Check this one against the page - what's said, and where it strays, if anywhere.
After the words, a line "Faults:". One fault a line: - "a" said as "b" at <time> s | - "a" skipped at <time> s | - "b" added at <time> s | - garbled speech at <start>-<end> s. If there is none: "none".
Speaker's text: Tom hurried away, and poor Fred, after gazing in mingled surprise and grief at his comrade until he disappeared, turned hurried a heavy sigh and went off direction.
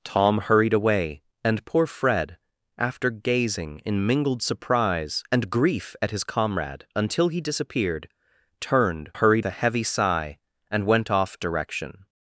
Tom hurried away, and poor Fred, after gazing in mingled surprise and grief at his comrade until he disappeared, turned hurried a heavy sigh and went off direction.
Faults:
none